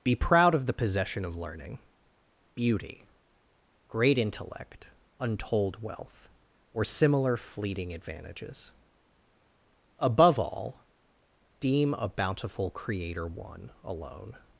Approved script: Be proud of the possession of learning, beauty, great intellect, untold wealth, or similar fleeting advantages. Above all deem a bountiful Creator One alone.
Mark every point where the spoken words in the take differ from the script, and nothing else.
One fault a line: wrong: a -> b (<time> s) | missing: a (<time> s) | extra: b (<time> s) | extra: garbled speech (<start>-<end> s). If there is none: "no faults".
no faults